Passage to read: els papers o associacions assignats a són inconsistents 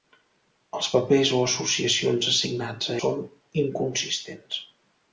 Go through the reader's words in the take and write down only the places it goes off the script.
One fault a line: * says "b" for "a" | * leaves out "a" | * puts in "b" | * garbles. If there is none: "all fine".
all fine